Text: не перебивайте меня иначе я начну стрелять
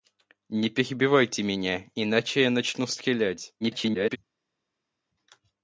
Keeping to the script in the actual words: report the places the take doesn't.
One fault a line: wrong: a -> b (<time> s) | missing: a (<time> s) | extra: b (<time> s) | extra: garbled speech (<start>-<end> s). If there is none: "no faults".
extra: garbled speech (3.6-4.2 s)